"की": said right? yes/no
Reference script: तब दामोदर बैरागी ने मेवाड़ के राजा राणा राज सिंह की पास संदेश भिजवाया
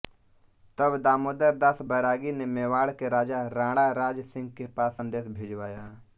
no